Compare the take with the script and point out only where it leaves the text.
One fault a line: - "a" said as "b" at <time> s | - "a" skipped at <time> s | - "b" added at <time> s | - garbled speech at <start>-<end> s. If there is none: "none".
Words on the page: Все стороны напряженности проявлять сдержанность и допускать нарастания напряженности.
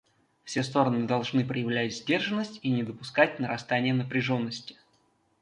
- "напряженности" said as "должны" at 1.1 s
- "не" added at 2.7 s